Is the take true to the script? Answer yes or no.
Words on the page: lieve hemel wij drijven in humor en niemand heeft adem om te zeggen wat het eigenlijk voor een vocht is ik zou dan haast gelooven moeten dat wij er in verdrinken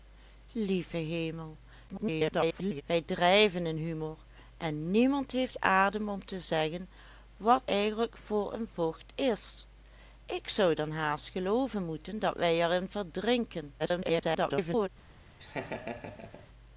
no